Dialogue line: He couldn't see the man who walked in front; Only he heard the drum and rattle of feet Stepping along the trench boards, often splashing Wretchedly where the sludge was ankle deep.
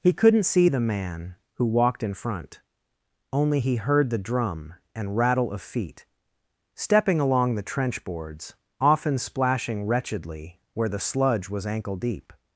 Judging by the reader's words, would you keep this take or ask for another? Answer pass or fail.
pass